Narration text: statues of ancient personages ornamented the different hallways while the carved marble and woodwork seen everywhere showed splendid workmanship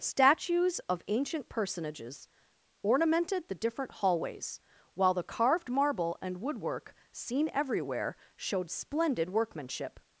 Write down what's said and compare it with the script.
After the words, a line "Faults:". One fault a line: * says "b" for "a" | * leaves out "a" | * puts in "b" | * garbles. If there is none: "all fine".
statues of ancient personages ornamented the different hallways while the carved marble and woodwork seen everywhere showed splendid workmanship
Faults:
all fine